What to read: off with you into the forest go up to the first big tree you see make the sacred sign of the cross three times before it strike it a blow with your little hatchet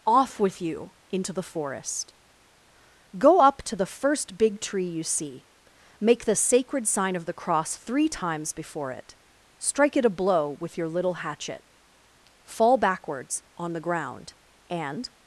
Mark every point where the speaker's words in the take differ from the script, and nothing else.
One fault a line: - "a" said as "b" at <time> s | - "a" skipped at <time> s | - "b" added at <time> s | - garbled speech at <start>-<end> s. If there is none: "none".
- "fall backwards on the ground and" added at 12.5 s